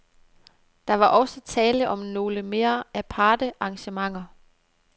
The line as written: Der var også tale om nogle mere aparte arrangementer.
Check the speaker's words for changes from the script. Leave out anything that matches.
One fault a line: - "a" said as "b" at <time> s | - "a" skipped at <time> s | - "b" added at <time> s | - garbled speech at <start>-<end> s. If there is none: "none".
none